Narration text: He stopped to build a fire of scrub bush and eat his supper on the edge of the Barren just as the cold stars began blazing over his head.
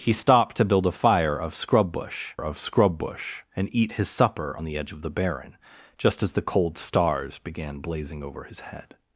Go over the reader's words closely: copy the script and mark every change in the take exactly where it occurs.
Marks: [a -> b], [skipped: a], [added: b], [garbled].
He stopped to build a fire of scrub bush [added: of scrub bush] and eat his supper on the edge of the Barren just as the cold stars began blazing over his head.